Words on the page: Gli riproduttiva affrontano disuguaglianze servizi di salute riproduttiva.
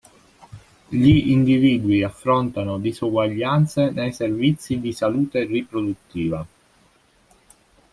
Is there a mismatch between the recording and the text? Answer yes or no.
yes